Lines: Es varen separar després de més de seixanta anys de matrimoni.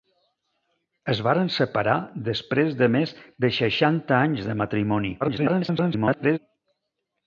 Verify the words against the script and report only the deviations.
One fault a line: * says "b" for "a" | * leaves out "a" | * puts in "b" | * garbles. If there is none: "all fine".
* garbles